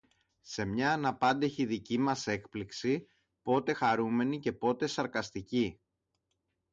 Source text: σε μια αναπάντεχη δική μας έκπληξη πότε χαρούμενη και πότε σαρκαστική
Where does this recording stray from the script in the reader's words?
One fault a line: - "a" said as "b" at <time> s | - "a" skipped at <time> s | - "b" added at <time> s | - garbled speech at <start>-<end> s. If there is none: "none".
none